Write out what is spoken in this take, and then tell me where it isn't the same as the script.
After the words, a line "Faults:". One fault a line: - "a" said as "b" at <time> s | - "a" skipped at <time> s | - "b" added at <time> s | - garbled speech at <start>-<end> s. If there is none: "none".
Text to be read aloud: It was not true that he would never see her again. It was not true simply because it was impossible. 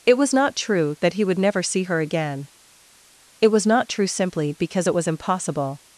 It was not true that he would never see her again. It was not true simply because it was impossible.
Faults:
none